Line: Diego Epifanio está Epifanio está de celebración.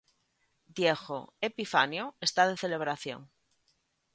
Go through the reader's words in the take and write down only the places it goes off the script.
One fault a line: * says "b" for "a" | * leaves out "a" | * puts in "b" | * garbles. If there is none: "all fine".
* leaves out "Epifanio está"